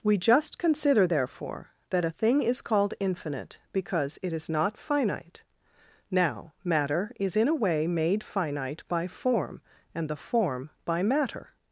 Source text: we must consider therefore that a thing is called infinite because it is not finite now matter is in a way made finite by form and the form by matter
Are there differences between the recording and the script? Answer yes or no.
yes